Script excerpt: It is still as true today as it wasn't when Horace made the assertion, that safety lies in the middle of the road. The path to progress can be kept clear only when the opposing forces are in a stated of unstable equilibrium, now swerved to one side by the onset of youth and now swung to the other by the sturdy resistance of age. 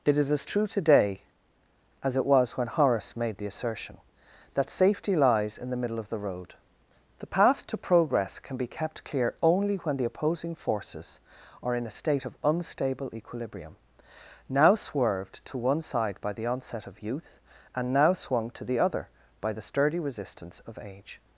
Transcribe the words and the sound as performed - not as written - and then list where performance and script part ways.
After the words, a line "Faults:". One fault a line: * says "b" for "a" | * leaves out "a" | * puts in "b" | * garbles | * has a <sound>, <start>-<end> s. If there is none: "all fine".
It is as true today as it was when Horace made the assertion, that safety lies in the middle of the road. The path to progress can be kept clear only when the opposing forces are in a state of unstable equilibrium, now swerved to one side by the onset of youth and now swung to the other by the sturdy resistance of age.
Faults:
* leaves out "still"
* says "was" for "wasn't"
* says "state" for "stated"